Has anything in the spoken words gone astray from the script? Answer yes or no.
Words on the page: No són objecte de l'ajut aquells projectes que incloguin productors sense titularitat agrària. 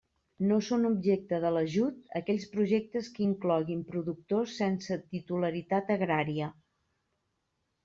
no